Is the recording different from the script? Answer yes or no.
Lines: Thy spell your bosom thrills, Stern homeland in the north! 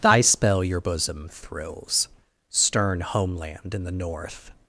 no